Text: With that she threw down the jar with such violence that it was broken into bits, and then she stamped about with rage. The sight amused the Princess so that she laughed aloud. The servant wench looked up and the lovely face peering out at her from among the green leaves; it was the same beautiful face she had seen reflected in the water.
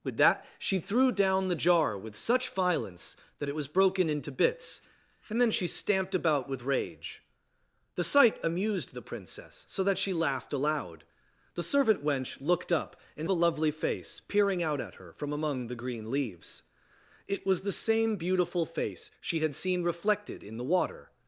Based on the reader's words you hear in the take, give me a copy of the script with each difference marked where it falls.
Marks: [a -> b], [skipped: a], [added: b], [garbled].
With that she threw down the jar with such violence that it was broken into bits, and then she stamped about with rage. The sight amused the Princess so that she laughed aloud. The servant wench looked up and the lovely face peering out at her from among the green leaves; it was the same beautiful face she had seen reflected in the water.